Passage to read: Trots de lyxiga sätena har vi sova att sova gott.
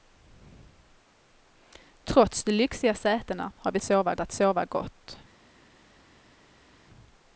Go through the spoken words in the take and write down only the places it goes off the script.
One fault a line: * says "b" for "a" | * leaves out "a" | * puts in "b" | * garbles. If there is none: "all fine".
all fine